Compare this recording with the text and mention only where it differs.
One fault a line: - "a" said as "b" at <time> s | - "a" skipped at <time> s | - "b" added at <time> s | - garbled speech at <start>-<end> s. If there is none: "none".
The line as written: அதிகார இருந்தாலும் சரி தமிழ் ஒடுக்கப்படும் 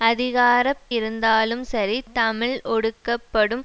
none